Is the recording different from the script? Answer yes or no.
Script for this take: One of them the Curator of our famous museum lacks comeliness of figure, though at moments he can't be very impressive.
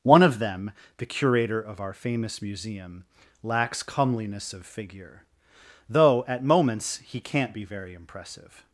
no